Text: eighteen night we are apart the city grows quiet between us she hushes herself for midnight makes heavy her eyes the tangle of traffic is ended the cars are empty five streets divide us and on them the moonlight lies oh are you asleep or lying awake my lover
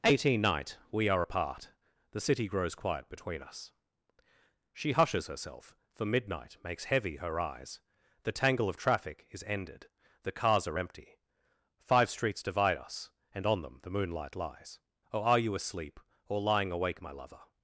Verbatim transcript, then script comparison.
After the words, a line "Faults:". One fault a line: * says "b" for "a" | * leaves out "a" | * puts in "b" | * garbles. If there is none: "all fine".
eighteen night we are apart the city grows quiet between us she hushes herself for midnight makes heavy her eyes the tangle of traffic is ended the cars are empty five streets divide us and on them the moonlight lies oh are you asleep or lying awake my lover
Faults:
all fine